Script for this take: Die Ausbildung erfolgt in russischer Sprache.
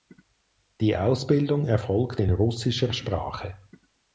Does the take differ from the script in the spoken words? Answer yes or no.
no